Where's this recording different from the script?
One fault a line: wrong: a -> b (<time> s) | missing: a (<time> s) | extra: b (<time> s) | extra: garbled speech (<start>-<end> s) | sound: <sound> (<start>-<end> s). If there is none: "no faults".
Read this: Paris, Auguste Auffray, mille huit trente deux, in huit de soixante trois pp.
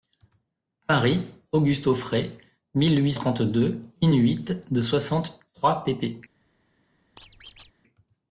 sound: squeak (7.2-7.7 s)